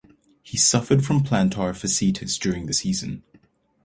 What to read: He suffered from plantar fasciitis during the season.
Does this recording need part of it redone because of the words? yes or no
no